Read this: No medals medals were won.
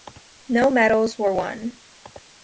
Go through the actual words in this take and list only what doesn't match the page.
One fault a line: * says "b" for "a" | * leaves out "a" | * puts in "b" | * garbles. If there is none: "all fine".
* leaves out "medals"